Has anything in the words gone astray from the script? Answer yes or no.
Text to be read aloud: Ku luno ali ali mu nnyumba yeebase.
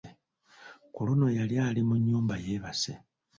yes